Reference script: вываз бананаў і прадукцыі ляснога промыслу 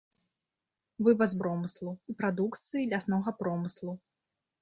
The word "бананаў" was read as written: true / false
false